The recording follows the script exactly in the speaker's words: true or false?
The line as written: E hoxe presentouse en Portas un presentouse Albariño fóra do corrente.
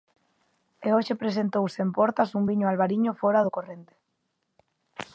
false